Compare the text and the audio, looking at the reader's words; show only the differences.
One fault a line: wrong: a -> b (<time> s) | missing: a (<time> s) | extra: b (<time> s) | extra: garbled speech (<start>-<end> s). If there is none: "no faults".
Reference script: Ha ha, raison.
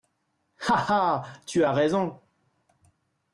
extra: tu as (1.4 s)